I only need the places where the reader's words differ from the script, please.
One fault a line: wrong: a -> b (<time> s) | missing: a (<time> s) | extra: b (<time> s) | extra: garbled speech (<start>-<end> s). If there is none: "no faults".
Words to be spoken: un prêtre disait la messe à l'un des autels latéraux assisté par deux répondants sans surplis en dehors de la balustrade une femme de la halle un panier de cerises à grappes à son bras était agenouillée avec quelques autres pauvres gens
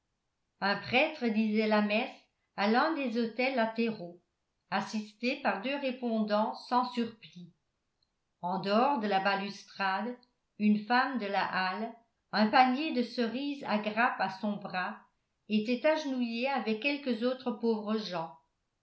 no faults